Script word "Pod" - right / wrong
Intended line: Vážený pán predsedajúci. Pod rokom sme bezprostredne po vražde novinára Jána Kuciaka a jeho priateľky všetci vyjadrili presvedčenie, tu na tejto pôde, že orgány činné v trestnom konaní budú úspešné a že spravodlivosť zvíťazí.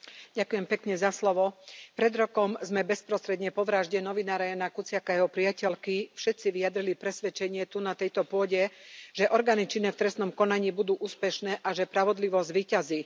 wrong